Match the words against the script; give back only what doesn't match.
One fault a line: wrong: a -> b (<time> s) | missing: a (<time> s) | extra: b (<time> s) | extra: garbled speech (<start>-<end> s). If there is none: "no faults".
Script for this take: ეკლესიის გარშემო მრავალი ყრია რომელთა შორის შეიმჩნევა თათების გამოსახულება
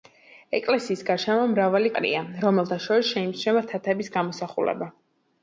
no faults